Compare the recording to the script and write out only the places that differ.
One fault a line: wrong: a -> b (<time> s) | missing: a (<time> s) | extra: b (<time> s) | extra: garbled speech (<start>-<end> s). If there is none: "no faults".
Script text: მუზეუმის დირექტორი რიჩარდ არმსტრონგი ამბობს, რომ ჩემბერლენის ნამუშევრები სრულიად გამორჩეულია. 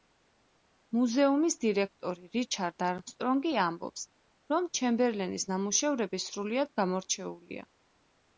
no faults